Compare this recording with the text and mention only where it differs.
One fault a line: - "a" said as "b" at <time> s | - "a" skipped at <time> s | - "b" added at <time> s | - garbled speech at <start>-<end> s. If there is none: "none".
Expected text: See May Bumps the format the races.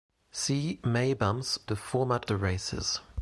none